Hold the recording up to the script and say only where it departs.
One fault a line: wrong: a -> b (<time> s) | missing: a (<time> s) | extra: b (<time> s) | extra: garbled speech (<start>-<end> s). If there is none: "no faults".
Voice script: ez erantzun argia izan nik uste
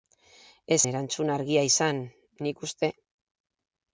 no faults